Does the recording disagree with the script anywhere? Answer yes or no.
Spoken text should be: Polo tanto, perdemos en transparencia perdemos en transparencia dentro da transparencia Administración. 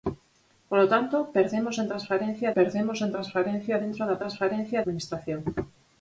no